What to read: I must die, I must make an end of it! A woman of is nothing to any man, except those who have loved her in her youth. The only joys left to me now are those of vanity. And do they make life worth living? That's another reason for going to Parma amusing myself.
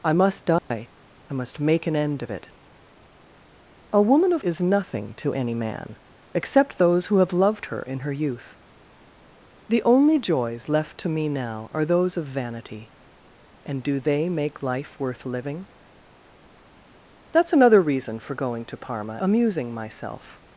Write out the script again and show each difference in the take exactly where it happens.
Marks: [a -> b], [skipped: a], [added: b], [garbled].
I must die, I must make an end of it! A woman of is nothing to any man, except those who have loved her in her youth. The only joys left to me now are those of vanity. And do they make life worth living? That's another reason for going to Parma amusing myself.